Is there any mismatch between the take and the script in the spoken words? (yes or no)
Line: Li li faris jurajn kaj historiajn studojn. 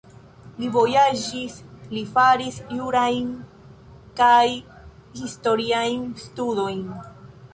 yes